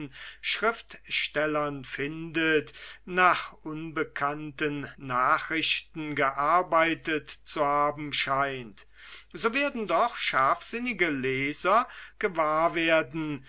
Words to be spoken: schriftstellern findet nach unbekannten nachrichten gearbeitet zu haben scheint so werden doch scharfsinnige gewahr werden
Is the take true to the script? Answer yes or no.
no